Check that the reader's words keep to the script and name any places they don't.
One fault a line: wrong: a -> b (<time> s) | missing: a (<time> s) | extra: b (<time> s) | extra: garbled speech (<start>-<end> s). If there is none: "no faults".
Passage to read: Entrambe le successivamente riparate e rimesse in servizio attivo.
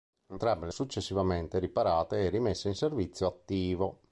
no faults